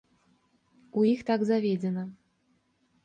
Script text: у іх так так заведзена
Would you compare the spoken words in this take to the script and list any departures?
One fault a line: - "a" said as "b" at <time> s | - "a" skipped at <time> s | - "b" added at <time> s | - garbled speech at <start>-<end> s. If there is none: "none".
- "так" skipped at 1.4 s